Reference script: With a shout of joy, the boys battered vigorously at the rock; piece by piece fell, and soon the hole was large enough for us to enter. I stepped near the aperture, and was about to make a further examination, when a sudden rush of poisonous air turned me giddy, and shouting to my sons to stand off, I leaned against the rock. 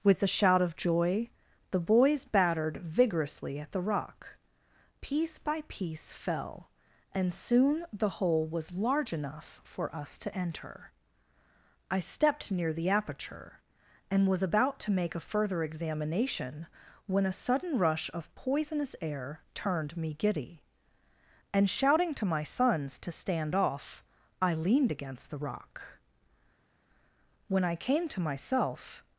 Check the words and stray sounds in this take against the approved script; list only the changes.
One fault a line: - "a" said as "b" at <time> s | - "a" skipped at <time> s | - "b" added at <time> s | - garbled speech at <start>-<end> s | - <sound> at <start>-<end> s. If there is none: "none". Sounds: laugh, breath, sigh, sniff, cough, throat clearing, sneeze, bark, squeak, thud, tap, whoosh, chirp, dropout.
- "When I came to myself" added at 27.5 s